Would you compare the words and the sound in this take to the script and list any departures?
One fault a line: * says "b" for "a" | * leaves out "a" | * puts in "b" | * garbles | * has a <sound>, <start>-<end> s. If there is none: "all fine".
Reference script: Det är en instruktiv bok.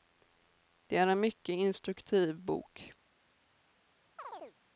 * puts in "mycket"
* has a chirp, 4.2-4.6 s